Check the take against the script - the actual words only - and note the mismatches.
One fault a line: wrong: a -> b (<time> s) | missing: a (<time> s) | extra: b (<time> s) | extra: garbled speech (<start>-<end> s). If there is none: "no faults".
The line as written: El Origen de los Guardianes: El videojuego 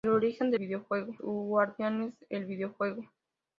wrong: los -> videojuego (0.6 s)